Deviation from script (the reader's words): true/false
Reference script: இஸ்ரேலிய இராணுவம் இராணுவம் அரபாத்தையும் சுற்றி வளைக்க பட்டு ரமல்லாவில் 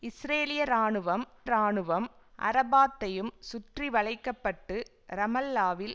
false